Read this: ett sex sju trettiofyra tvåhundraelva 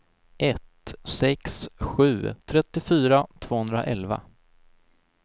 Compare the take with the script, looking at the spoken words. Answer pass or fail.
pass